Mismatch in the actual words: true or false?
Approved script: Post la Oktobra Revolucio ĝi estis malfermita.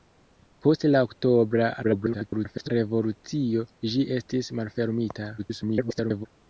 true